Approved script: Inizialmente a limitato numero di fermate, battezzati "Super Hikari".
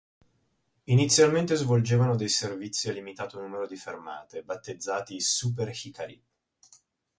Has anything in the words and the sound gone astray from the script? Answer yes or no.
yes